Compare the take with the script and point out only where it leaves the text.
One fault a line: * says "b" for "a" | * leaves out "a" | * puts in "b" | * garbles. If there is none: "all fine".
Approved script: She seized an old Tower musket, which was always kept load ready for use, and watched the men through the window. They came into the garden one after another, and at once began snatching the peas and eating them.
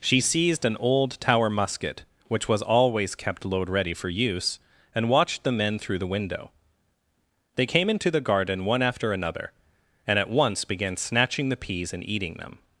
all fine